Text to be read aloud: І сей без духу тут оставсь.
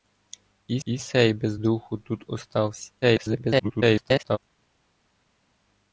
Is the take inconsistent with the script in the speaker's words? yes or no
yes